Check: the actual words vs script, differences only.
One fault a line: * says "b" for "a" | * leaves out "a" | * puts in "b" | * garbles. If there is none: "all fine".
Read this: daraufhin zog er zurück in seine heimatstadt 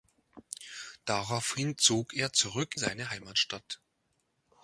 * leaves out "in"